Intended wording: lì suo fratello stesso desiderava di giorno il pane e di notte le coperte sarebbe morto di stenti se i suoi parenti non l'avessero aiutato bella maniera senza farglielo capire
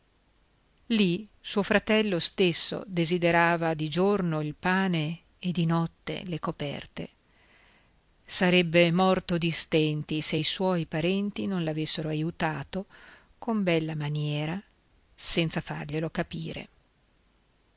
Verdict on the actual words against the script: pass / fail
fail